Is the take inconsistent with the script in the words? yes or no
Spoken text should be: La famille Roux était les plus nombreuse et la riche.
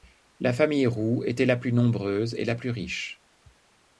yes